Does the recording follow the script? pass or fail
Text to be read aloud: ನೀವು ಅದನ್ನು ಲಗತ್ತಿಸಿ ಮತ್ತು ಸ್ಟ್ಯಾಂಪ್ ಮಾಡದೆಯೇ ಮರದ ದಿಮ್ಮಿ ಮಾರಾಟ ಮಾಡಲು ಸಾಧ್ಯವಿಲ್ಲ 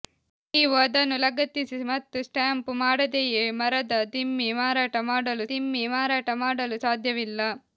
fail